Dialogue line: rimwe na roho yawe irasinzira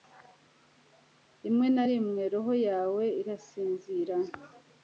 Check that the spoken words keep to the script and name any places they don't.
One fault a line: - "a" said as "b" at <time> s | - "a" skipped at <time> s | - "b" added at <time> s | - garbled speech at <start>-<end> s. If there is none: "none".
- "rimwe" added at 1.9 s